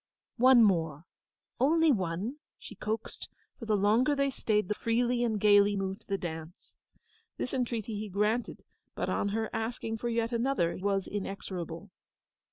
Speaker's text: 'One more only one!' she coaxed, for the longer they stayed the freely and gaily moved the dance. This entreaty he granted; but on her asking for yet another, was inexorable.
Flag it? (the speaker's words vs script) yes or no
no